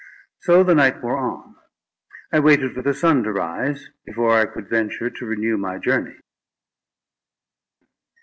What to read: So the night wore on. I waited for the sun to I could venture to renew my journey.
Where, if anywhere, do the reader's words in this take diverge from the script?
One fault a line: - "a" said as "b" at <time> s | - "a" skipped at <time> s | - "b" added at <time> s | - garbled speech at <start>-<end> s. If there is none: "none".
- "rise before" added at 3.3 s